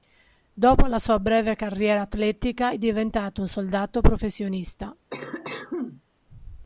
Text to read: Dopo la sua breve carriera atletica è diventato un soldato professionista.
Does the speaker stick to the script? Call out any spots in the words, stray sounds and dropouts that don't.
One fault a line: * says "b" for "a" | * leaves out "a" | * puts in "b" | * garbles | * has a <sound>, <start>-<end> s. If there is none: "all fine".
* has a cough, 5.1-6.0 s